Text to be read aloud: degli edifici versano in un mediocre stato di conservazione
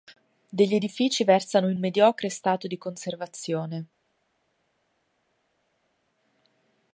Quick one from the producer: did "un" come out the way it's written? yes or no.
no